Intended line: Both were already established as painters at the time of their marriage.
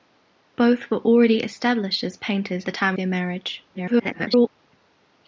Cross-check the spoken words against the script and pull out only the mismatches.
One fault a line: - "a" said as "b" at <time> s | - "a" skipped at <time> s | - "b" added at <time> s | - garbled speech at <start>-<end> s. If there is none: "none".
- "at" skipped at 2.6 s
- "of" skipped at 3.0 s
- garbled speech at 3.7-4.5 s